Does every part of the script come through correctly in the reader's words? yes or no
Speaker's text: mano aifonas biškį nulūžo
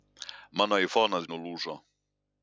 no